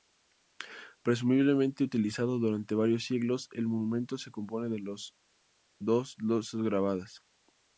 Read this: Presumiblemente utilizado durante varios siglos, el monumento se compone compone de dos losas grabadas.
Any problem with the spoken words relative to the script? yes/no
yes